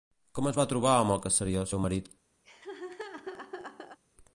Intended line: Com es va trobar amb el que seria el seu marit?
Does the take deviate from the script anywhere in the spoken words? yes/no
no